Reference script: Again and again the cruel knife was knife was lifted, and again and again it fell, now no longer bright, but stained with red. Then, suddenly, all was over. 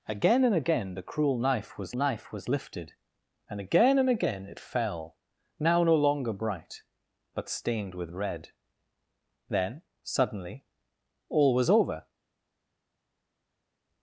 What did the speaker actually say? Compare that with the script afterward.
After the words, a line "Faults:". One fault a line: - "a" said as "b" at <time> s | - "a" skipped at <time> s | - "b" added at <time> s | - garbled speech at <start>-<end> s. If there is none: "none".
Again and again the cruel knife was knife was lifted, and again and again it fell, now no longer bright, but stained with red. Then, suddenly, all was over.
Faults:
none